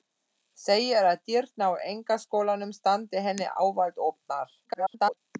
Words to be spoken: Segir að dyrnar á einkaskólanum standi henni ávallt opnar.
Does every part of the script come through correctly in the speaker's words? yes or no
no